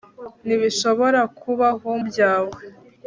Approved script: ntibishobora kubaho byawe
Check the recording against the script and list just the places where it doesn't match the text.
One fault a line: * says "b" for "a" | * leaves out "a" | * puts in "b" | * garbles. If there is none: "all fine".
all fine